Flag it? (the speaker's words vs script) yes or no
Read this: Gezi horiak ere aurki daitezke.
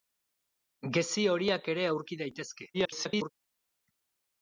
yes